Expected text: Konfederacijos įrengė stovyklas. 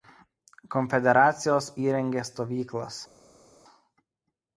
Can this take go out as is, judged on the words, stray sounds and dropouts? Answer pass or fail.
pass